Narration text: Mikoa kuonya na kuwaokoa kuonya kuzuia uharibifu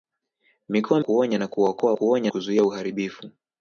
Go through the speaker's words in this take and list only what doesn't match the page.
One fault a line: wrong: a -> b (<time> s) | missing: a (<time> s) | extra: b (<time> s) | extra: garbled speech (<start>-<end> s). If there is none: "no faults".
no faults